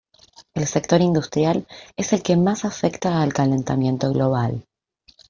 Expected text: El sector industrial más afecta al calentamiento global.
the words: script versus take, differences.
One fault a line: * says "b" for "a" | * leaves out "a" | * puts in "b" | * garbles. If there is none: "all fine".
* puts in "es el que"